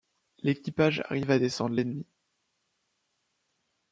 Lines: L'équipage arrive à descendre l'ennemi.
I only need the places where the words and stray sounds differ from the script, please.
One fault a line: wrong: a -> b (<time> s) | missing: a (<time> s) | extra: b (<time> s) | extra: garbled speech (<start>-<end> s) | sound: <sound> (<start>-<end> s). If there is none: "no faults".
no faults